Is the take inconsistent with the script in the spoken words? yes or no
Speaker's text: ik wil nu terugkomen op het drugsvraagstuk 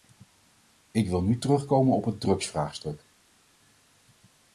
no